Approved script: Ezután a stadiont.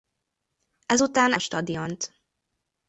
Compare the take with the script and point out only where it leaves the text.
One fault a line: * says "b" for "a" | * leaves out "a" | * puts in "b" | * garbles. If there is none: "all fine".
all fine